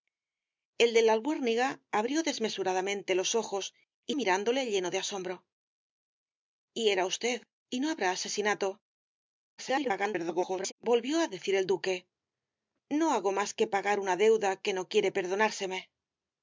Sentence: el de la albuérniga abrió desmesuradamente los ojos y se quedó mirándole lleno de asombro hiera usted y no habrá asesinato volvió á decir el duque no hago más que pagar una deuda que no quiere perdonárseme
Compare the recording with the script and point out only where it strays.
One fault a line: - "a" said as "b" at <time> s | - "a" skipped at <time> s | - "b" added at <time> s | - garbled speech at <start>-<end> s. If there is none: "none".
- "se quedó" skipped at 4.2 s
- garbled speech at 9.6-10.7 s